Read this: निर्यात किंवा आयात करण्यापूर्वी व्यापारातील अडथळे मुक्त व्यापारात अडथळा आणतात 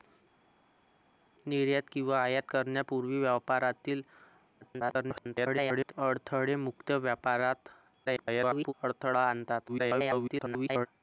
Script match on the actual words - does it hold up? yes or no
no